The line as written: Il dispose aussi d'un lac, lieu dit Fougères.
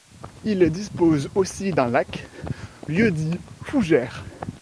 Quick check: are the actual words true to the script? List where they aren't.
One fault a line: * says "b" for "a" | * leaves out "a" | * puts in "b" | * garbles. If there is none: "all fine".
all fine